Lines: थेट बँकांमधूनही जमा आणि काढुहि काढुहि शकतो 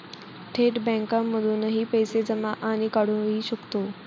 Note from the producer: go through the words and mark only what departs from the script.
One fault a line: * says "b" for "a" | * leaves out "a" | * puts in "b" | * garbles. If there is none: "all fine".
* puts in "पैसे"
* leaves out "काढुहि"